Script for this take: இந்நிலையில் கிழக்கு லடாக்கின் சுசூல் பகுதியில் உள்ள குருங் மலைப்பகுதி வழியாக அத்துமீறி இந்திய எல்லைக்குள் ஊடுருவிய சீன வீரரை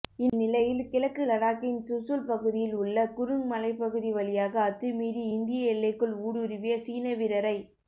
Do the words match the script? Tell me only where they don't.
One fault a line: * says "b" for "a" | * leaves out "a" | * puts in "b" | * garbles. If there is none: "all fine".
all fine